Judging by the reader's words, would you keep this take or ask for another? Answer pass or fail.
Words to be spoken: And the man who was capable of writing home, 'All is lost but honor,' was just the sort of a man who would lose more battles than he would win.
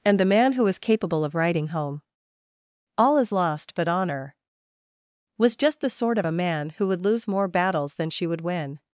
fail